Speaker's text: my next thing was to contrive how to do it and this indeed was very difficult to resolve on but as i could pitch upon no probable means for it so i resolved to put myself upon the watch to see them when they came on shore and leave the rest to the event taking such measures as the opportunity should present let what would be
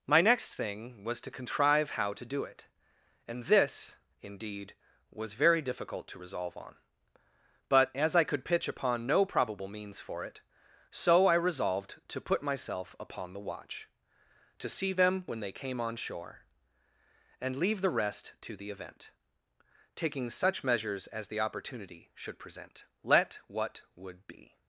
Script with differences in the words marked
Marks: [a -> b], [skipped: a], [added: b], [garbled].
my next thing was to contrive how to do it and this indeed was very difficult to resolve on but as i could pitch upon no probable means for it so i resolved to put myself upon the watch to see them when they came on shore and leave the rest to the event taking such measures as the opportunity should present let what would be